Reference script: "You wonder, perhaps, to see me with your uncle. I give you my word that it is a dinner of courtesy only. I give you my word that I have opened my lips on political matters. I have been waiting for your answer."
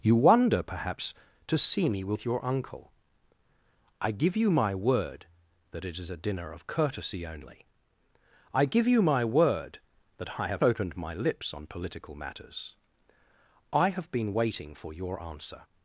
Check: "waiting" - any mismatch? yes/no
no